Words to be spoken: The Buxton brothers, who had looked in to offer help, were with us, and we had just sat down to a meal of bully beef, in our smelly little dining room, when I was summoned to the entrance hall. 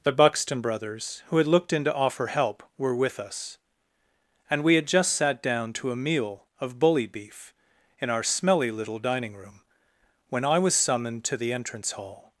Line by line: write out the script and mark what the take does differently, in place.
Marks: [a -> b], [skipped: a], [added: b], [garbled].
The Buxton brothers, who had looked in to offer help, were with us, and we had just sat down to a meal of bully beef, in our smelly little dining room, when I was summoned to the entrance hall.